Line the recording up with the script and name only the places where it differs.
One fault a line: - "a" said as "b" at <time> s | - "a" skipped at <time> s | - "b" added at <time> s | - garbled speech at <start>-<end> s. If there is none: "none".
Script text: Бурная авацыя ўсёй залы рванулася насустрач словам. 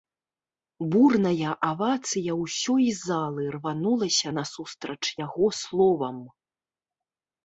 - "яго" added at 5.3 s